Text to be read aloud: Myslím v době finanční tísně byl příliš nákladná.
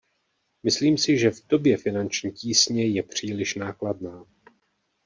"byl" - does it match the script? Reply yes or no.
no